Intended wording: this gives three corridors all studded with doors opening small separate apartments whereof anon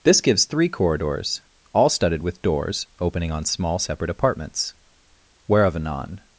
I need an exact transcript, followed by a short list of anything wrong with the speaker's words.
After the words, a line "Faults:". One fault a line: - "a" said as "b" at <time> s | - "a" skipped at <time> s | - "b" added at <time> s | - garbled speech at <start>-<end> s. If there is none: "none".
this gives three corridors all studded with doors opening on small separate apartments whereof anon
Faults:
- "on" added at 3.3 s